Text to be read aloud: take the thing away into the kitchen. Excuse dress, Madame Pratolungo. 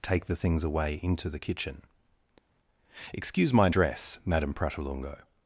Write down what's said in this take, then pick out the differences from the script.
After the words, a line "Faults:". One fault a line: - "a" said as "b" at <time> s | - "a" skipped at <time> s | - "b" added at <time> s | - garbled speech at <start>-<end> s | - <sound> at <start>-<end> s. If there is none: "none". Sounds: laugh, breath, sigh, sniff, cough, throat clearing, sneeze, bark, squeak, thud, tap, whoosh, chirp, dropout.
take the things away into the kitchen. Excuse my dress, Madame Pratolungo.
Faults:
- "thing" said as "things" at 0.3 s
- "my" added at 3.5 s